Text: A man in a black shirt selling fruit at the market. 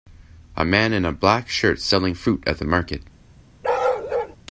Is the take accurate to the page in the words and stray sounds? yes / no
no